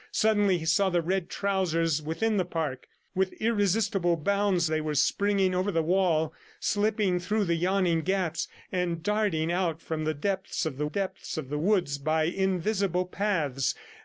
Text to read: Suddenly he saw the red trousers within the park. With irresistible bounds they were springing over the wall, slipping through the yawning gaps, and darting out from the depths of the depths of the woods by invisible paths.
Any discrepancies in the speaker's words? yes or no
no